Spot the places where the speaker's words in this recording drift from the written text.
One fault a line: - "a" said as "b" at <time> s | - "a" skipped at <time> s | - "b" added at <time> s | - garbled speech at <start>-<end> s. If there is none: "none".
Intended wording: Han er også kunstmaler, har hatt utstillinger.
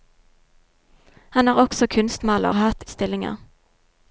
none